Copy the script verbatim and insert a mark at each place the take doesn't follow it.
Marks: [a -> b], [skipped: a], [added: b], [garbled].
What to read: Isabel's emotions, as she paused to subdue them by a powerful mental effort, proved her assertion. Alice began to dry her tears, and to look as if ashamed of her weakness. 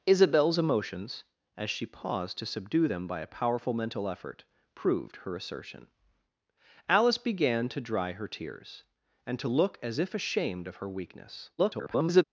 Isabel's emotions, as she paused to subdue them by a powerful mental effort, proved her assertion. Alice began to dry her tears, and to look as if ashamed of her weakness. [garbled]